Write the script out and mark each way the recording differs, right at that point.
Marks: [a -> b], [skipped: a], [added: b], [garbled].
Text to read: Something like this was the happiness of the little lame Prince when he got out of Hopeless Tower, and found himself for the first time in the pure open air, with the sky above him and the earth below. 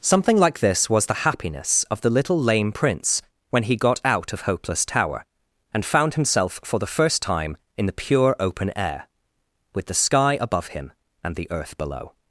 Something like this was the happiness of the little lame Prince when he got out of Hopeless Tower, and found himself for the first time in the pure open air, with the sky above him and the earth below.